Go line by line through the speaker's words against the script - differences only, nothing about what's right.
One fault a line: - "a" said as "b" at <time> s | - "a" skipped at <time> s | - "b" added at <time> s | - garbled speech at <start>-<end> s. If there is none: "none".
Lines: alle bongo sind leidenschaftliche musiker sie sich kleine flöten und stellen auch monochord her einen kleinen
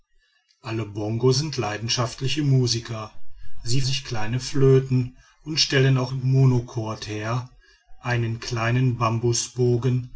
none